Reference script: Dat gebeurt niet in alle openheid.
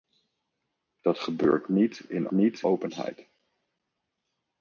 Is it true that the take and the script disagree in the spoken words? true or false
true